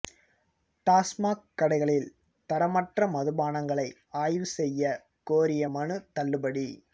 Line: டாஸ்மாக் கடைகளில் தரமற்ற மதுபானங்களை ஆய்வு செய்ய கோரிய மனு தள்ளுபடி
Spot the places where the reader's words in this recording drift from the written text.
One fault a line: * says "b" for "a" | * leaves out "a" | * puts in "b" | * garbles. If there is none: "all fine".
all fine